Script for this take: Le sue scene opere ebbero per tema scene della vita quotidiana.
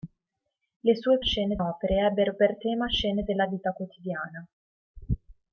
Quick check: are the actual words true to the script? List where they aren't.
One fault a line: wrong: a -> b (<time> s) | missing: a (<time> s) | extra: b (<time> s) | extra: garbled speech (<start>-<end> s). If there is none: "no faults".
no faults